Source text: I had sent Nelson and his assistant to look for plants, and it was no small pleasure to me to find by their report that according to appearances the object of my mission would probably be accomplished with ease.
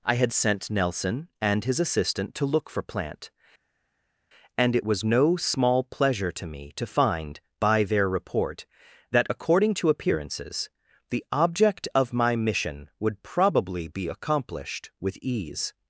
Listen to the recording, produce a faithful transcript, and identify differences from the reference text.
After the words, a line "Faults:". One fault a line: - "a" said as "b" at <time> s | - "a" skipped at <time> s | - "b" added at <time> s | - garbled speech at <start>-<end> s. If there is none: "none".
I had sent Nelson and his assistant to look for plant, and it was no small pleasure to me to find by their report that according to appearances the object of my mission would probably be accomplished with ease.
Faults:
- "plants" said as "plant" at 2.8 s